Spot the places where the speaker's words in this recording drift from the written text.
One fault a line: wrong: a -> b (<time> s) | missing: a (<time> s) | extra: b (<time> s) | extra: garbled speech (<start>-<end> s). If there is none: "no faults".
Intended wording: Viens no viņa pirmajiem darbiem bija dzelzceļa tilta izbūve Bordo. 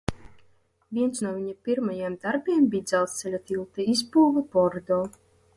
no faults